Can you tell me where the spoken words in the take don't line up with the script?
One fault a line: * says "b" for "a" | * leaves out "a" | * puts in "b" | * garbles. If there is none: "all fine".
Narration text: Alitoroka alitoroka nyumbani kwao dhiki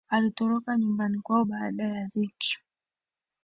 * leaves out "alitoroka"
* puts in "baada ya"